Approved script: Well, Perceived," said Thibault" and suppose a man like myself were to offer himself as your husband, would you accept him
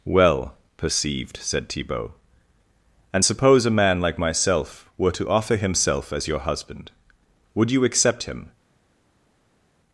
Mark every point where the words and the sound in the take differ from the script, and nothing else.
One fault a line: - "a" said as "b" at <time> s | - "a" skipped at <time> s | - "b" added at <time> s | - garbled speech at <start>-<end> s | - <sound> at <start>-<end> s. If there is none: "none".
none